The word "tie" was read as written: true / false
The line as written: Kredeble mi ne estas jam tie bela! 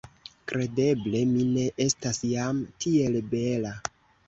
false